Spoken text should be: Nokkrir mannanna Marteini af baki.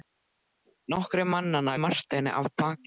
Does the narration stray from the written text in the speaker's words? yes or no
no